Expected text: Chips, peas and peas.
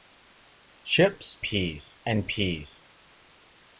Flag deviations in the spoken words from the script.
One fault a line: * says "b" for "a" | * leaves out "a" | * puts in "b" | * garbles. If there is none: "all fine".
all fine